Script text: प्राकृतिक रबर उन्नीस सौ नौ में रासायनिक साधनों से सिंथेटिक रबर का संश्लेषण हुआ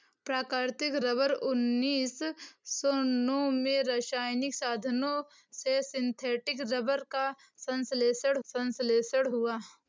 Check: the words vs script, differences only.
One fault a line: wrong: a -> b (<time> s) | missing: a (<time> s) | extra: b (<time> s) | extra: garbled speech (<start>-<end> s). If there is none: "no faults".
extra: संश्लेषण (8.5 s)